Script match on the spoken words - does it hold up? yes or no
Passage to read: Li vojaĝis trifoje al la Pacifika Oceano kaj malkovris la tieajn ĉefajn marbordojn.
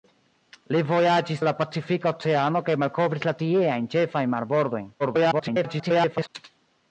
no